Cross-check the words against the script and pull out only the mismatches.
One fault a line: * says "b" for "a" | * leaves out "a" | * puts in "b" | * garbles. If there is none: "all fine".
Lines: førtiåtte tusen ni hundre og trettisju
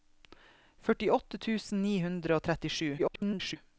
* garbles